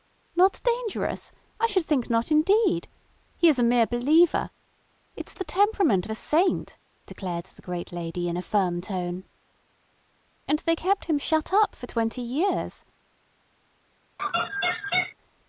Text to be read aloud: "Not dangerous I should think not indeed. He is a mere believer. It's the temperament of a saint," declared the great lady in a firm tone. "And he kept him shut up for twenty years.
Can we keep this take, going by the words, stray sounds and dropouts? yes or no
no